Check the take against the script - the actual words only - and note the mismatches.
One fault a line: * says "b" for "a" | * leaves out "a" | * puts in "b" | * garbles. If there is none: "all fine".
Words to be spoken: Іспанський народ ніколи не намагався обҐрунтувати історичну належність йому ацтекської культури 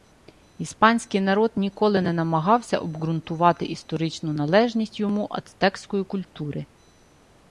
all fine